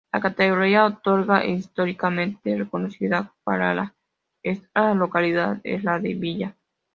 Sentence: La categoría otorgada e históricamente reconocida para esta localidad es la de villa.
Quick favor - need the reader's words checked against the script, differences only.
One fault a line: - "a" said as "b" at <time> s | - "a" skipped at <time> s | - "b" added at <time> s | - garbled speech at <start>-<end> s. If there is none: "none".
none